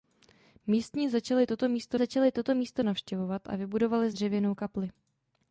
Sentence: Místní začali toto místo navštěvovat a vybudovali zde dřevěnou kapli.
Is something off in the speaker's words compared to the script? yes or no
yes